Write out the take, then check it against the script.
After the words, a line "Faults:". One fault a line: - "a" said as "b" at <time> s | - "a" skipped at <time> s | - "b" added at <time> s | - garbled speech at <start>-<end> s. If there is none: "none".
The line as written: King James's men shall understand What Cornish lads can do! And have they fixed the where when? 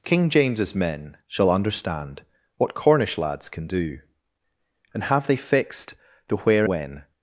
King James's men shall understand What Cornish lads can do! And have they fixed the where when?
Faults:
none